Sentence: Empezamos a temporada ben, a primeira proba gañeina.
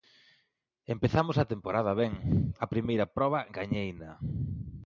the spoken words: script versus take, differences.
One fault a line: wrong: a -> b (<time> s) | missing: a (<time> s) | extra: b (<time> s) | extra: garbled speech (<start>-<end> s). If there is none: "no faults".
no faults